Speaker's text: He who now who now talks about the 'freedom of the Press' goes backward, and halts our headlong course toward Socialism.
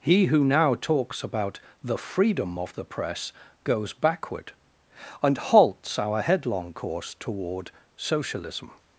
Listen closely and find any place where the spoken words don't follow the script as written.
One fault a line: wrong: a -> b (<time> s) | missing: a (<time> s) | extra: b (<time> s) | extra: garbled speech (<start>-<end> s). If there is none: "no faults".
missing: who now (0.7 s)